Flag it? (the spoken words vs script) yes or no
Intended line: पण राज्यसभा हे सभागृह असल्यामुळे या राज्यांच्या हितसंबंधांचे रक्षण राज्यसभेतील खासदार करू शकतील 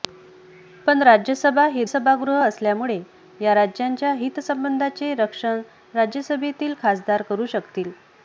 no